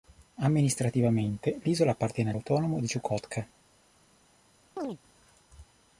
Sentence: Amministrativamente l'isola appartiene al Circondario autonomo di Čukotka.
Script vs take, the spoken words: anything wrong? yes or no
yes